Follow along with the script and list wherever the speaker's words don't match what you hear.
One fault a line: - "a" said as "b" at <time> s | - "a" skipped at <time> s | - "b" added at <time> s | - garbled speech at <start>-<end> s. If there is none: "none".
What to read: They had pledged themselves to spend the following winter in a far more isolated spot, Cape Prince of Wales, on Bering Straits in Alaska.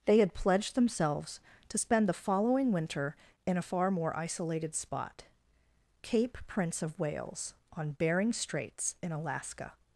none